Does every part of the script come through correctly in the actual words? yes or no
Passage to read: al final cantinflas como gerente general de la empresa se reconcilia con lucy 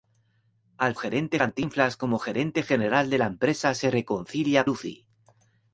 no